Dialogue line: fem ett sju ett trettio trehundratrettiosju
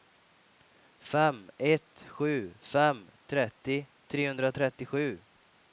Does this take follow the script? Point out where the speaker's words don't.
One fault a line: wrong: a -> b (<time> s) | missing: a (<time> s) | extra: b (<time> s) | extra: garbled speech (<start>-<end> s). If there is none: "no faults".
wrong: ett -> fem (2.6 s)